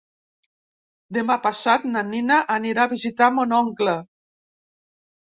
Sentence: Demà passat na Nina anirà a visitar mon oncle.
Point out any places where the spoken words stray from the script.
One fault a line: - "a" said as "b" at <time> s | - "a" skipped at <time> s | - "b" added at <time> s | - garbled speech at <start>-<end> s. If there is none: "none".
none